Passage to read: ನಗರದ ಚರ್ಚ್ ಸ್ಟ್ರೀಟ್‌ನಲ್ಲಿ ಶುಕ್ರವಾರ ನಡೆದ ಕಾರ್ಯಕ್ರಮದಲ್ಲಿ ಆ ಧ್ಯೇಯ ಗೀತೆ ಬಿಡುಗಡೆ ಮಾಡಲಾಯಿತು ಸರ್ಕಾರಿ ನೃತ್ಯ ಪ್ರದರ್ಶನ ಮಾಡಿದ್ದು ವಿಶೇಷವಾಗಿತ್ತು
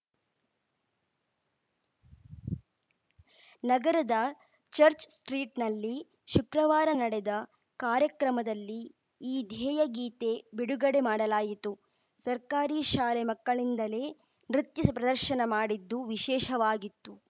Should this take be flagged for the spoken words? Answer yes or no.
yes